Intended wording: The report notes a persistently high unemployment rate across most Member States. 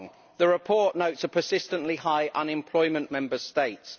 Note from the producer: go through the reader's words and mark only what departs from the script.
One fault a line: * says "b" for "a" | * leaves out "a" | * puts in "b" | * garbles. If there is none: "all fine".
* leaves out "rate across most"